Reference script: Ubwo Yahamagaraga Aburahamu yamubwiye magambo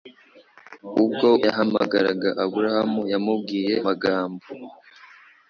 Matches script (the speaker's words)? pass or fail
pass